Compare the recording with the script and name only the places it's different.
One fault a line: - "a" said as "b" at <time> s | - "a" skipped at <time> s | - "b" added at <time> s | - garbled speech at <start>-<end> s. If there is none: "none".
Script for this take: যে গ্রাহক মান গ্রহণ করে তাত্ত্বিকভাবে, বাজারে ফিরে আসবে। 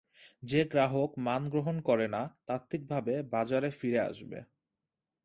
- "না" added at 2.1 s